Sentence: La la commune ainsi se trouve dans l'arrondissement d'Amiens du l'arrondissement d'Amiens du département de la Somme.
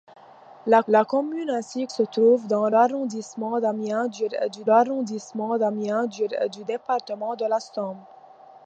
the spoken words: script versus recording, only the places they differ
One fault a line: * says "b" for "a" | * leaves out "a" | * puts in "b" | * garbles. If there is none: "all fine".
all fine